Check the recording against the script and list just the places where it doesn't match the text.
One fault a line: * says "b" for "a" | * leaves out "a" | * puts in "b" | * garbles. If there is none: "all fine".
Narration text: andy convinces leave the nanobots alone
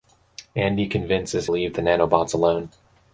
all fine